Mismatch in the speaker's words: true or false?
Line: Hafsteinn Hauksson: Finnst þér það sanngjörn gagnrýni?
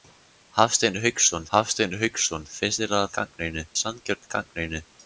true